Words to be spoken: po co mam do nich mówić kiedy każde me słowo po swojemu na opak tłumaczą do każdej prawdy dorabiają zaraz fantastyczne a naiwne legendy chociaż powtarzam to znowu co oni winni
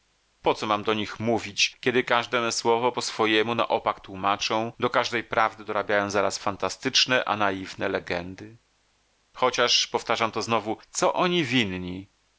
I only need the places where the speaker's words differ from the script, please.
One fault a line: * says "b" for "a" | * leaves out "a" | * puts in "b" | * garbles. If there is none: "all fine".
all fine